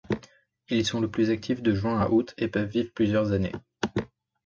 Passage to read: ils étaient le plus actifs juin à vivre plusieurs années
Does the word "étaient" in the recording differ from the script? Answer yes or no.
yes